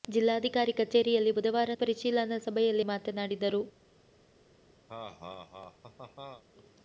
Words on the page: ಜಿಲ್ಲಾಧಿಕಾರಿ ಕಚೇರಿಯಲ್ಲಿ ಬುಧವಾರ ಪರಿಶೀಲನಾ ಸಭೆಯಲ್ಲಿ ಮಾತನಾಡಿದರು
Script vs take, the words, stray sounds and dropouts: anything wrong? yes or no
yes